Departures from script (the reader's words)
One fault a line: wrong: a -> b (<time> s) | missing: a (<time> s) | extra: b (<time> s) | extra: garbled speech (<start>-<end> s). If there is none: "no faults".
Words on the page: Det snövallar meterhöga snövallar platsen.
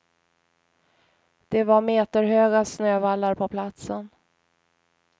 wrong: snövallar -> var (1.6 s)
extra: på (3.3 s)